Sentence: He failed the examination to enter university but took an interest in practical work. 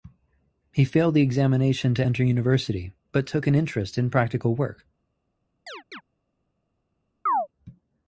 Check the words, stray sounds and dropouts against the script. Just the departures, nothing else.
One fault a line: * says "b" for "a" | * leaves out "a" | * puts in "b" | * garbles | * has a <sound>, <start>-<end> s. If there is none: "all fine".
* has a chirp, 5.7-6.0 s
* has a chirp, 7.3-7.5 s